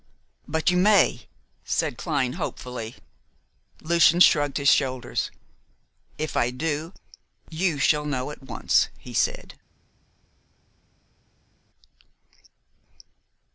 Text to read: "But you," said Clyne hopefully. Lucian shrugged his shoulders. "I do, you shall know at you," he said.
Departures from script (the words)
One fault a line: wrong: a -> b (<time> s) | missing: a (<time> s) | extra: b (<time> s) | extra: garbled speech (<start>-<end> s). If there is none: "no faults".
extra: may (0.8 s)
extra: If (6.2 s)
wrong: you -> once (8.4 s)